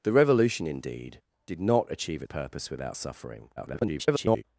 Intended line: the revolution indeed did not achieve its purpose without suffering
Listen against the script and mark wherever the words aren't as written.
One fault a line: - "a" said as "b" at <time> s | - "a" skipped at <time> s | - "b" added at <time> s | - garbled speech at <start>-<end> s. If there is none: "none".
- "its" skipped at 2.2 s
- garbled speech at 3.6-4.4 s